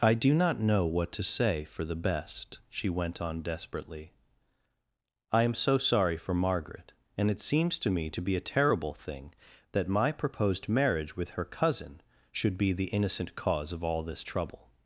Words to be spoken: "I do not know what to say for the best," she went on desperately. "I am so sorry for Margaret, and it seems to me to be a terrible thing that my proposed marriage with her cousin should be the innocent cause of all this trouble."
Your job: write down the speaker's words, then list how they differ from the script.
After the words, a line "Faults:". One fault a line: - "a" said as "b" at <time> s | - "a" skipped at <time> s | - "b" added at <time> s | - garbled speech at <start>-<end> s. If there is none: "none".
"I do not know what to say for the best," she went on desperately. "I am so sorry for Margaret, and it seems to me to be a terrible thing that my proposed marriage with her cousin should be the innocent cause of all this trouble."
Faults:
none